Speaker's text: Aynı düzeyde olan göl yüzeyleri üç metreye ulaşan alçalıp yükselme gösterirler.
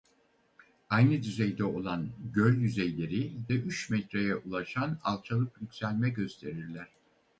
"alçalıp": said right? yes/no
yes